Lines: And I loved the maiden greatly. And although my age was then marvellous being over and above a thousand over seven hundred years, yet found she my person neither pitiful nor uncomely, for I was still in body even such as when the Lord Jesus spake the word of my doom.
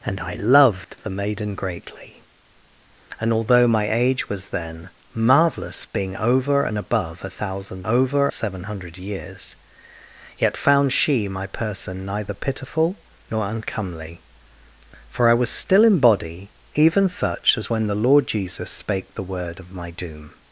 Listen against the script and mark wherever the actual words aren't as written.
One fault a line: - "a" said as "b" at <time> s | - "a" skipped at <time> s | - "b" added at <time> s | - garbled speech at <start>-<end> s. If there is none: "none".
none